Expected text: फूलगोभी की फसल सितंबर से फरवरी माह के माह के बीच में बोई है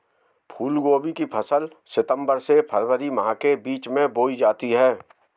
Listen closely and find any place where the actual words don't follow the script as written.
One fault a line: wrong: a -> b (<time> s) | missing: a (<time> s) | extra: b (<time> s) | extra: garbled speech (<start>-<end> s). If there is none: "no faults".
missing: माह के (3.6 s)
extra: जाती (4.4 s)